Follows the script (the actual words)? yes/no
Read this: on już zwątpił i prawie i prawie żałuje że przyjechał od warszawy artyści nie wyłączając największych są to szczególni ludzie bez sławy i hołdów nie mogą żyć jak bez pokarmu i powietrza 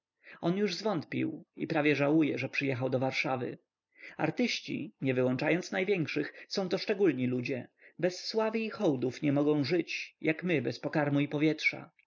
no